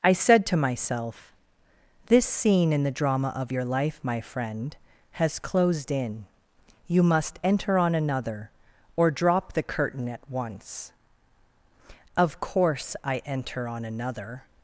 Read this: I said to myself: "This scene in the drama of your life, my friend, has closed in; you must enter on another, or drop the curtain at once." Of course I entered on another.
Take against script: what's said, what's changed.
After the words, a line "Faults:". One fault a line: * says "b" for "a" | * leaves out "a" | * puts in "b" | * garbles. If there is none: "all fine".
I said to myself: "This scene in the drama of your life, my friend, has closed in; you must enter on another, or drop the curtain at once." Of course I enter on another.
Faults:
* says "enter" for "entered"